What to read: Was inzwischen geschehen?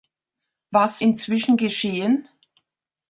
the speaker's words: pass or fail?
pass